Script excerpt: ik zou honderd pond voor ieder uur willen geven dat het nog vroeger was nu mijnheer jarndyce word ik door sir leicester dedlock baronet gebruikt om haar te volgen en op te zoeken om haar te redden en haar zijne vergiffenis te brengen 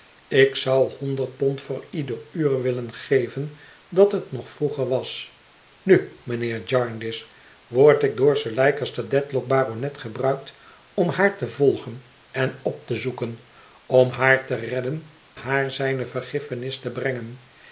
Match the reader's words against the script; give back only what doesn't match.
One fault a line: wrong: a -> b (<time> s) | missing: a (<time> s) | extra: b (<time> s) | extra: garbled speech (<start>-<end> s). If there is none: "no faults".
missing: en (15.1 s)